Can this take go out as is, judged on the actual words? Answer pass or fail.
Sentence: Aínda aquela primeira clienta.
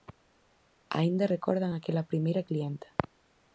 fail